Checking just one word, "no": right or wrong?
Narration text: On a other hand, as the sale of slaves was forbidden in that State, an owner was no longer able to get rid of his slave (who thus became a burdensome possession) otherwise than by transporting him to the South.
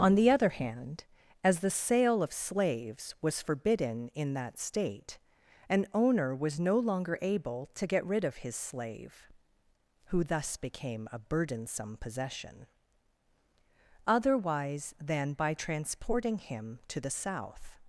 right